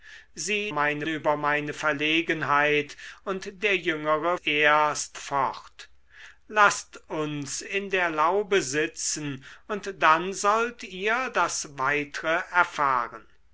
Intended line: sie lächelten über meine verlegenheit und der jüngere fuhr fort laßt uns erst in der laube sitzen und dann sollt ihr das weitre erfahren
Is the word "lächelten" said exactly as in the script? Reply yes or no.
no